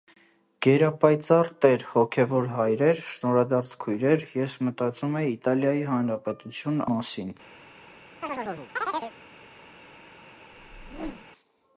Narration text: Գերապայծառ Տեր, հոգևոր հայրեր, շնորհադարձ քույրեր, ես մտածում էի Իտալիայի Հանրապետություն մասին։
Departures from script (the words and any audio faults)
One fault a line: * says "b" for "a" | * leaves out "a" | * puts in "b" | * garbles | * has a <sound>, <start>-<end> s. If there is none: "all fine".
* has a chirp, 8.2-9.1 s
* has a whoosh, 10.5-11.3 s